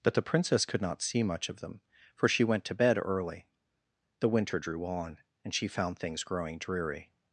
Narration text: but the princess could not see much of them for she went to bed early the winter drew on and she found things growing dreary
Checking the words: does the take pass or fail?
pass